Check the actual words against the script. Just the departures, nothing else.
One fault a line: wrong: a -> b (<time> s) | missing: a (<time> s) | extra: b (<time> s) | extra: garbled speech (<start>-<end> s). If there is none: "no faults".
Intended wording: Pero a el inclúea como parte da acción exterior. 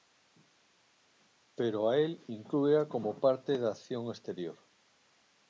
no faults